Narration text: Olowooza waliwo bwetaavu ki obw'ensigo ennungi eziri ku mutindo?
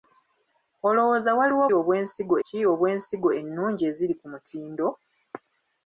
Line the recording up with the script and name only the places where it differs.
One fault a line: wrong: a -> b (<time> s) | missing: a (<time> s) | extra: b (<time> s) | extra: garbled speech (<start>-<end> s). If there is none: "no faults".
wrong: bwetaavu -> obw'ensigo (1.8 s)